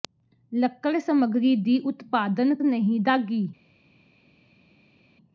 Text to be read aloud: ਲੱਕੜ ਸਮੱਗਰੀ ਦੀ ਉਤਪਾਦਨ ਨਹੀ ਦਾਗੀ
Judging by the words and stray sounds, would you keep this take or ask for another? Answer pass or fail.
pass